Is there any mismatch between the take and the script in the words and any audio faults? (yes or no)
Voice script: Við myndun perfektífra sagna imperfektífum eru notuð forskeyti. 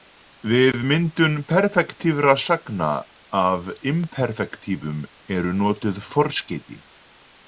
yes